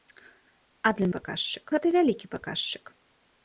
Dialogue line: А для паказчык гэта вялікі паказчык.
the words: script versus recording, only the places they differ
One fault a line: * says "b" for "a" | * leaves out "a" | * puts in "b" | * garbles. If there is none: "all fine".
all fine